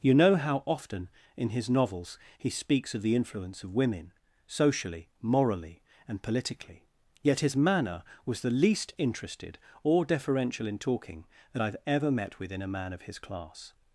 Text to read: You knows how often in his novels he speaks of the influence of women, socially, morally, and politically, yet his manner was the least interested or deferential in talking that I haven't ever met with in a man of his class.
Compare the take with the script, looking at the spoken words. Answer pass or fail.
fail